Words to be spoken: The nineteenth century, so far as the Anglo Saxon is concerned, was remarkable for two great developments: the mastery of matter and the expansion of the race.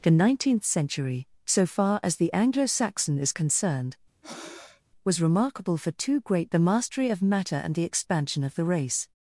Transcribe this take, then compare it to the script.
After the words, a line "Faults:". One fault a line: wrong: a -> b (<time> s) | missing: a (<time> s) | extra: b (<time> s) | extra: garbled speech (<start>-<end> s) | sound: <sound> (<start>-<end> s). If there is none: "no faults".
The nineteenth century, so far as the Anglo Saxon is concerned, was remarkable for two great: the mastery of matter and the expansion of the race.
Faults:
sound: breath (4.2-4.8 s)
missing: developments (6.5 s)